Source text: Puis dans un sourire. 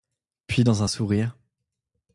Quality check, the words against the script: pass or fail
pass